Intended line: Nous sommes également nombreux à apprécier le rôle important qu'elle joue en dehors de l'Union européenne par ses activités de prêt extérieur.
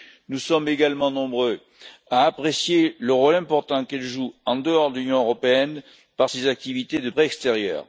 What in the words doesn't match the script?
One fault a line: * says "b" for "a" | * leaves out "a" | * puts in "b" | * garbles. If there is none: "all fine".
all fine